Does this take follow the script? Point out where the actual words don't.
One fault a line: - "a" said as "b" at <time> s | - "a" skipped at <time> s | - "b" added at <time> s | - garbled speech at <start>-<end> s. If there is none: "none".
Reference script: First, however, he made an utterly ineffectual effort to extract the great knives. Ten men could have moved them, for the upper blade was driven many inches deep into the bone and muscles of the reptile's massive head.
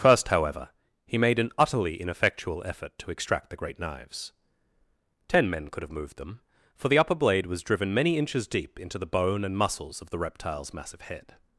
none